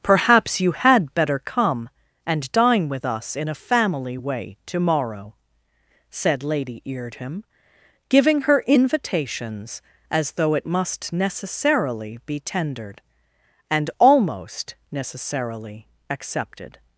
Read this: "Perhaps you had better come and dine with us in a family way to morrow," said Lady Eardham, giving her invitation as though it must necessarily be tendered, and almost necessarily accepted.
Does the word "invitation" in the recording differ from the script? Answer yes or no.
yes